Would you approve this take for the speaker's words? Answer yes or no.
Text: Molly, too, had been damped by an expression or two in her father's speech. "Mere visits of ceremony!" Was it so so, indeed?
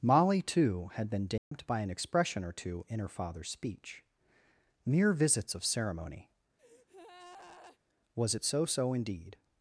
yes